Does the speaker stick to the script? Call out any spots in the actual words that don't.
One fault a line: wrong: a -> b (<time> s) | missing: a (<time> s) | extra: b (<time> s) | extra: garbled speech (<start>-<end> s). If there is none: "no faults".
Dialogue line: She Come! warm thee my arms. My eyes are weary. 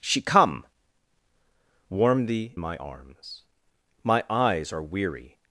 no faults